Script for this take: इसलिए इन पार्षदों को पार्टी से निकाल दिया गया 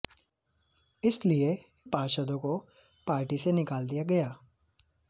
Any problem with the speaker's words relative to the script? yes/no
yes